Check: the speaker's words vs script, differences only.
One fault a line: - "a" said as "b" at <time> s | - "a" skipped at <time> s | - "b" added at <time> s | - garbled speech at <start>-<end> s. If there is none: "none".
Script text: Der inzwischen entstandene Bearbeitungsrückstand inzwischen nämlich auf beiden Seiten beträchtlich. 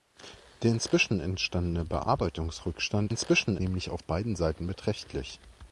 none